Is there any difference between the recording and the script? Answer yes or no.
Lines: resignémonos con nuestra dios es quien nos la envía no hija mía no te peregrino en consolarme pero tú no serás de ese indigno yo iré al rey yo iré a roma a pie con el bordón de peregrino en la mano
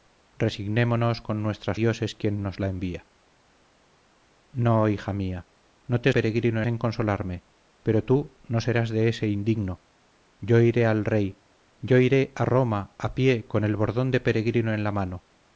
no